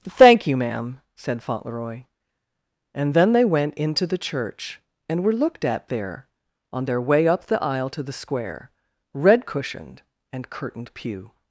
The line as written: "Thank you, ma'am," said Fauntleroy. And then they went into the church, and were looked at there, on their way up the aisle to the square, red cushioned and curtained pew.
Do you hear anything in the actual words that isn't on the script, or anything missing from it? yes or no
no